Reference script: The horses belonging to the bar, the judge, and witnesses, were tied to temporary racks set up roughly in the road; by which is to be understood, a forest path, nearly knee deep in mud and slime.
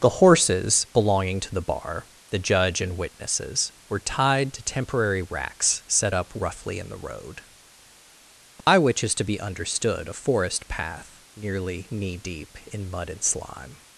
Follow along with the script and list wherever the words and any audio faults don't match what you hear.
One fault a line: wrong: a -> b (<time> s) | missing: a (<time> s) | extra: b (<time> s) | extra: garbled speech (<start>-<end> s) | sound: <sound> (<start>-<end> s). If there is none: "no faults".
sound: dropout (8.6-8.7 s)